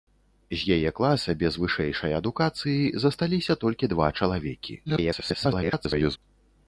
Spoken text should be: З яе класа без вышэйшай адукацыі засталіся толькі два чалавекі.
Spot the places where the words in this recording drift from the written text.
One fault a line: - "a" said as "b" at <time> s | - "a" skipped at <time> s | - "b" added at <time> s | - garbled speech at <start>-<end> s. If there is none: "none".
- garbled speech at 4.9-6.2 s